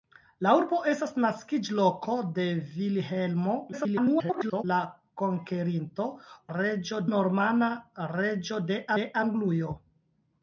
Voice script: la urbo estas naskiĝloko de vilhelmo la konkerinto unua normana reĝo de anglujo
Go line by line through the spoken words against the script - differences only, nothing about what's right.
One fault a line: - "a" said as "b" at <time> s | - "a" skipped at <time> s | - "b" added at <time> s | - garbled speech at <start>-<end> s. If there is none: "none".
- garbled speech at 3.7-4.6 s
- "unua" said as "reĝo" at 6.6 s
- "de" added at 9.0 s